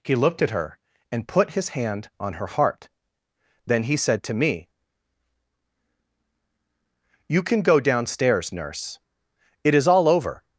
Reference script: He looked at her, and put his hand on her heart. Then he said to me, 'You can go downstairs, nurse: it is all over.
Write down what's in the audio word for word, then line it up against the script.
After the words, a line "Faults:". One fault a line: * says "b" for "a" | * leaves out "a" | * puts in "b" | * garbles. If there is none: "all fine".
He looked at her, and put his hand on her heart. Then he said to me, 'You can go downstairs, nurse: it is all over.
Faults:
all fine